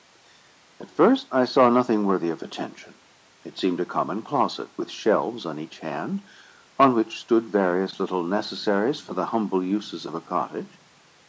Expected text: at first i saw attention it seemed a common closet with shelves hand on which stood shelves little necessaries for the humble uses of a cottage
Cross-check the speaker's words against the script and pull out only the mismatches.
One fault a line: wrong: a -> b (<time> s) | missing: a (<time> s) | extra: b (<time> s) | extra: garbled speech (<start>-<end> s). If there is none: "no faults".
extra: nothing worthy of (1.7 s)
extra: on each (5.4 s)
wrong: shelves -> various (7.5 s)